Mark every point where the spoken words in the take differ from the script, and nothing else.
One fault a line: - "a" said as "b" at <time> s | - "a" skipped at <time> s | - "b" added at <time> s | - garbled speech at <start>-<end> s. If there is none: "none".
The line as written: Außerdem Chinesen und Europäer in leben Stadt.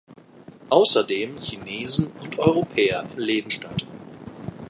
none